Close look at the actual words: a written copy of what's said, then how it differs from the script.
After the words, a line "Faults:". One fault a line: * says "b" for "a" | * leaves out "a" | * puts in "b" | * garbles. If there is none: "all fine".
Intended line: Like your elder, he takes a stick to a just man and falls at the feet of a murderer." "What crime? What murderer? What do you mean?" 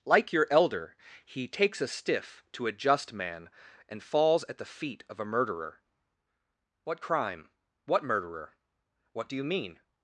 Like your elder, he takes a stiff to a just man and falls at the feet of a murderer." "What crime? What murderer? What do you mean?"
Faults:
* says "stiff" for "stick"